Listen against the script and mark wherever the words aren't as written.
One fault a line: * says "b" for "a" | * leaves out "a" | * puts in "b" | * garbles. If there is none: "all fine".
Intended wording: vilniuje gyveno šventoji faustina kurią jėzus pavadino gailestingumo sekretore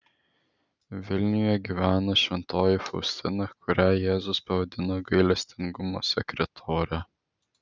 all fine